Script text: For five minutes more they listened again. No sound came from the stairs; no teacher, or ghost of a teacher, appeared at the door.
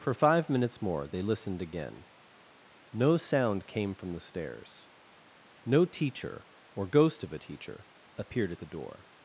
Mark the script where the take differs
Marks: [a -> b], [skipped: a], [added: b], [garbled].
For five minutes more they listened again. No sound came from the stairs; no teacher, or ghost of a teacher, appeared at the door.